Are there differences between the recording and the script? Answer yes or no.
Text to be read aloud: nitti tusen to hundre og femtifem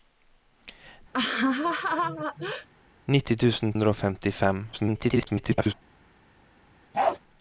yes